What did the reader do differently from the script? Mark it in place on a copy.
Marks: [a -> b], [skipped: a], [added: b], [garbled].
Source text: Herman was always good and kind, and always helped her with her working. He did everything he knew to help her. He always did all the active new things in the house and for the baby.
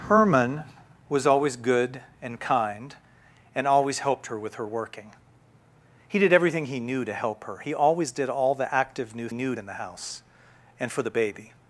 Herman was always good and kind, and always helped her with her working. He did everything he knew to help her. He always did all the active new [things -> knew] in the house and for the baby.